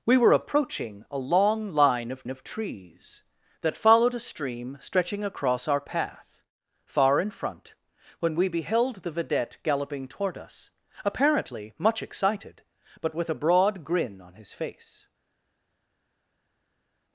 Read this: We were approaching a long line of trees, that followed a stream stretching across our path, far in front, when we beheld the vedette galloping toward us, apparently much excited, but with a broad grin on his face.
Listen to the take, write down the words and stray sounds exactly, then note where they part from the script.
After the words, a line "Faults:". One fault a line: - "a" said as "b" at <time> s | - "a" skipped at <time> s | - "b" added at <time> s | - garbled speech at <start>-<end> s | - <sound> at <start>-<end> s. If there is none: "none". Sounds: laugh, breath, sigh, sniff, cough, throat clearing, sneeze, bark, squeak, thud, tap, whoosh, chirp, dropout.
We were approaching a long line of of trees, that followed a stream stretching across our path, far in front, when we beheld the vedette galloping toward us, apparently much excited, but with a broad grin on his face.
Faults:
- "of" added at 2.3 s